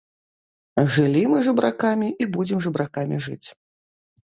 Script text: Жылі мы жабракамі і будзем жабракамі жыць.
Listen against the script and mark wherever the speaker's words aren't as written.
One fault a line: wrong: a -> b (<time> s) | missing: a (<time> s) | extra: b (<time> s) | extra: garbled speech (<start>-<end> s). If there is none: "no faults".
no faults